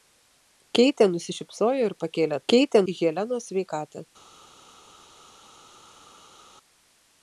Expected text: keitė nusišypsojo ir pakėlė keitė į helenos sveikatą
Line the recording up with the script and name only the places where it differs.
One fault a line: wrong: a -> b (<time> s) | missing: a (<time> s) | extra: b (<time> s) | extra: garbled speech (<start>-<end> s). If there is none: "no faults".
no faults